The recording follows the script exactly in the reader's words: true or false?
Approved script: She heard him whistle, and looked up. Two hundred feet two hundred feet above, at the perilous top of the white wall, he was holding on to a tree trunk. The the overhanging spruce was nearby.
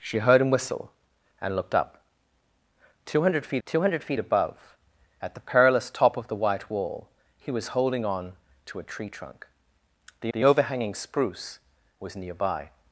true